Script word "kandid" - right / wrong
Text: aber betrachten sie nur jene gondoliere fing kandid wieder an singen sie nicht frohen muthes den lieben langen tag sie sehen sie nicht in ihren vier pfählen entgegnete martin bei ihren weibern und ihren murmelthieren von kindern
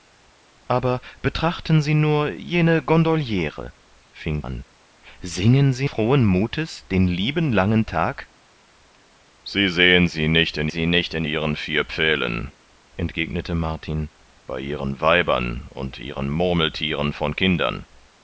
wrong